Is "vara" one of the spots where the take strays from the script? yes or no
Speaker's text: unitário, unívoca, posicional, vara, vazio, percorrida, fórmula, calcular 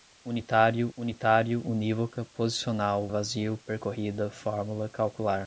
yes